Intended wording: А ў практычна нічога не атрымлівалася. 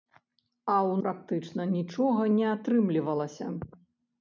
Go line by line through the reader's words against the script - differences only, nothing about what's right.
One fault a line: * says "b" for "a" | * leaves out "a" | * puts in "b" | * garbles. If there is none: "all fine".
all fine